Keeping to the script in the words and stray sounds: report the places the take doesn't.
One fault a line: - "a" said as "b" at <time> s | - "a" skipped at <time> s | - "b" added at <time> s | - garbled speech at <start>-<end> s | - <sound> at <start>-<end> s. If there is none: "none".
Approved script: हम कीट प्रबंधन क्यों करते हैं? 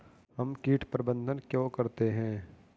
none